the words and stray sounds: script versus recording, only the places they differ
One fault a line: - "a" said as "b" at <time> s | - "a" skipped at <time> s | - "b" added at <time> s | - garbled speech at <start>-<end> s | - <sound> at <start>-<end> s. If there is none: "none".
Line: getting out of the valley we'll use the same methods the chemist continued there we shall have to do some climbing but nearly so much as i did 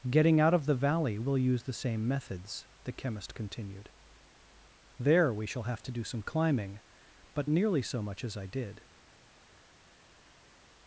none